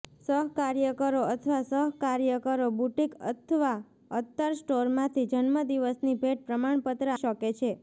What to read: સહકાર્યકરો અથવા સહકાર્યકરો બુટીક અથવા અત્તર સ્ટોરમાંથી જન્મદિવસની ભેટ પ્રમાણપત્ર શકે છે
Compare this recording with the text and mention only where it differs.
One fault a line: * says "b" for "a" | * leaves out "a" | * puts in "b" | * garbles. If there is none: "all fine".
all fine